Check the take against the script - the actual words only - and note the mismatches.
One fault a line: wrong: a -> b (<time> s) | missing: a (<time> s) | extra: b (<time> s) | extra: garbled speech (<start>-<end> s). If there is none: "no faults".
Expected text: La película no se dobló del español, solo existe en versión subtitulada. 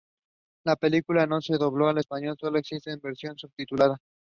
wrong: del -> al (1.9 s)